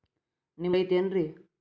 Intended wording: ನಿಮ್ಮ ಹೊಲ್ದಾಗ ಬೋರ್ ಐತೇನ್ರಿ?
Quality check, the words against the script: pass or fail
fail